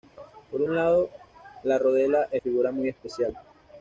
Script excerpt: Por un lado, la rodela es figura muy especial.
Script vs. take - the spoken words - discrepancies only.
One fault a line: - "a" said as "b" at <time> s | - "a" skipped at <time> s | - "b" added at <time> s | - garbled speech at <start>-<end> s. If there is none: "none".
none